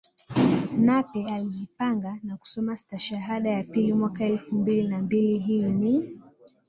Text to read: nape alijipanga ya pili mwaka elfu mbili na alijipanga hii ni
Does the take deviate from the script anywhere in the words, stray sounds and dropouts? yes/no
yes